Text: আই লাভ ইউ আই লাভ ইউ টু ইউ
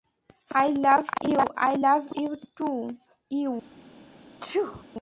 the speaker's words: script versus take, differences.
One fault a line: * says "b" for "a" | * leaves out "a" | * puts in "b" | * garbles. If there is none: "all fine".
all fine